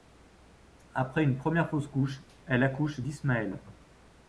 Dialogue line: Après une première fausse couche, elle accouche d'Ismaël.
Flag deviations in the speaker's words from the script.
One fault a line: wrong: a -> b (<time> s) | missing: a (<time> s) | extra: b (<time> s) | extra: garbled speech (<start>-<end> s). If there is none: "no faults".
no faults